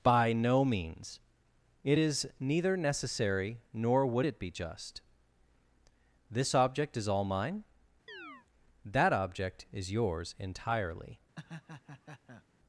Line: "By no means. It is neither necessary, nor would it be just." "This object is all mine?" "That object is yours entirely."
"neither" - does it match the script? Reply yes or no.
yes